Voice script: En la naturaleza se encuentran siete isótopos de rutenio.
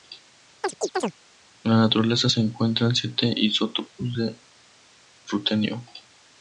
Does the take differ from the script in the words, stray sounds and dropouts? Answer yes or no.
yes